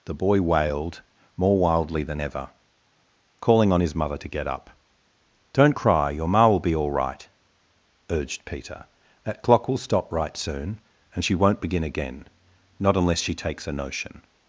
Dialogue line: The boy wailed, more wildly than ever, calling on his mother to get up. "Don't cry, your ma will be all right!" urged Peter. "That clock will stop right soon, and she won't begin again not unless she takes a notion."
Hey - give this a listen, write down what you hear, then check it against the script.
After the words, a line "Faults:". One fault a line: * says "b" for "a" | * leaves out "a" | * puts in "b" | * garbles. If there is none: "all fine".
The boy wailed, more wildly than ever, calling on his mother to get up. "Don't cry, your ma will be all right!" urged Peter. "That clock will stop right soon, and she won't begin again not unless she takes a notion."
Faults:
all fine